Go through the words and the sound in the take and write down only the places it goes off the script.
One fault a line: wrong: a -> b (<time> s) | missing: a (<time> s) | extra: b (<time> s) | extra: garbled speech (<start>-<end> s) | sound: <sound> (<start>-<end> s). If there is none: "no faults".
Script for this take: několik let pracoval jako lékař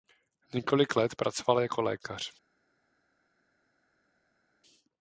no faults